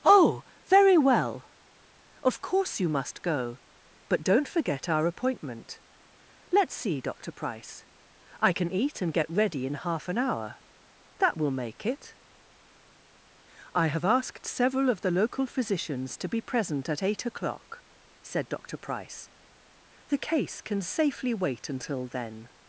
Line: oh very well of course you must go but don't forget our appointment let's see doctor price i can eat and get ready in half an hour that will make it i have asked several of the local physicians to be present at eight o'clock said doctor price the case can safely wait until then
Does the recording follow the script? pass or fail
pass